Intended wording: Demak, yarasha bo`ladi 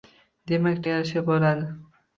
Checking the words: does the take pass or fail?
pass